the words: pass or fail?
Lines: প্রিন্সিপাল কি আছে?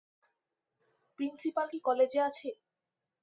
fail